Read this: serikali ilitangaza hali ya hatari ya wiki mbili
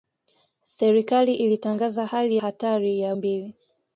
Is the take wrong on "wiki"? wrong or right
wrong